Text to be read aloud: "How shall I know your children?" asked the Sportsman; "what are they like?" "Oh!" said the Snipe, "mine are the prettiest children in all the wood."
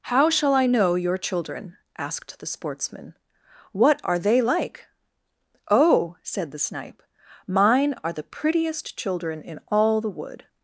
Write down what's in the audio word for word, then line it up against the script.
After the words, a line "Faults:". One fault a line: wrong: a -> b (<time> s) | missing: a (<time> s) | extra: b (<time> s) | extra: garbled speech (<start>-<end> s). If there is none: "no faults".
"How shall I know your children?" asked the Sportsman; "what are they like?" "Oh!" said the Snipe, "mine are the prettiest children in all the wood."
Faults:
no faults